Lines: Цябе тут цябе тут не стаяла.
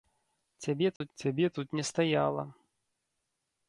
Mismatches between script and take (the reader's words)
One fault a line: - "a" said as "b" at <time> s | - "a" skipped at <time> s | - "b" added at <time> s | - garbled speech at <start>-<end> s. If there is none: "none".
none